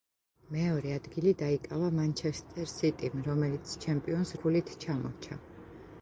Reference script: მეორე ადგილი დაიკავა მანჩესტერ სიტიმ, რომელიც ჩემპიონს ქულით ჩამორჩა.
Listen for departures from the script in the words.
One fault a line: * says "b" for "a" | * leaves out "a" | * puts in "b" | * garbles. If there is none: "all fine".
all fine